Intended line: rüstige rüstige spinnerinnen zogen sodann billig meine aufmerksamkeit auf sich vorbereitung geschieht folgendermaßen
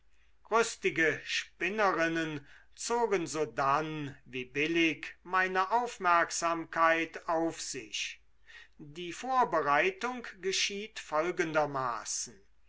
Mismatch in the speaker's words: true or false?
true